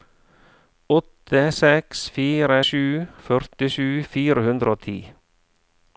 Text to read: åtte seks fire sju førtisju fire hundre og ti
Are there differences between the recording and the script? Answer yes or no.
no